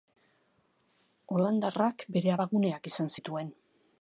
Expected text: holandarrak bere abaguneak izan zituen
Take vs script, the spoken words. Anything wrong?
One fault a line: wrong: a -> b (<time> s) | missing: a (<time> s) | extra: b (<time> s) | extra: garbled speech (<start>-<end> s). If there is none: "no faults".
no faults